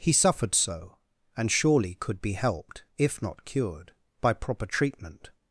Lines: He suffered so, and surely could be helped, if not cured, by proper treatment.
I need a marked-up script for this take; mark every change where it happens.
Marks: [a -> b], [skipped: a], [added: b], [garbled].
He suffered so, and surely could be helped, if not cured, by proper treatment.